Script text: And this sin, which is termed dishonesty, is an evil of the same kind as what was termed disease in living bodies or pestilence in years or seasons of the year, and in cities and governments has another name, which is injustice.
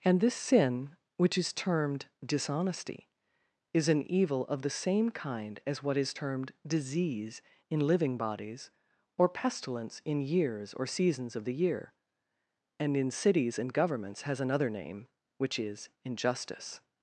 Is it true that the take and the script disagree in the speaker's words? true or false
true